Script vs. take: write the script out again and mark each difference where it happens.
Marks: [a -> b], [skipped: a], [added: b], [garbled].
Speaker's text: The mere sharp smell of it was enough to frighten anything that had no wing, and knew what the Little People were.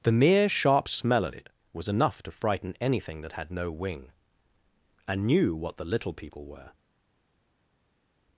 The mere sharp smell of it was enough to frighten anything that had no wing, and knew what the Little People were.